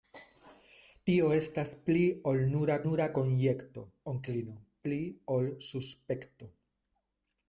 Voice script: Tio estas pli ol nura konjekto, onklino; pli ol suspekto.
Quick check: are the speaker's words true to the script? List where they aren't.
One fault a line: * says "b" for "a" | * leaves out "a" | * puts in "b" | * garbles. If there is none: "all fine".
* puts in "nura"